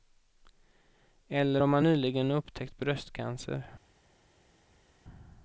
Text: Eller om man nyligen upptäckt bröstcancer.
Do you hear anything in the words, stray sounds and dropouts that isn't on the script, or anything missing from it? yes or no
no